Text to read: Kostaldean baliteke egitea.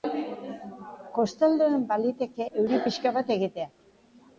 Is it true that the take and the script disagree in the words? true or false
true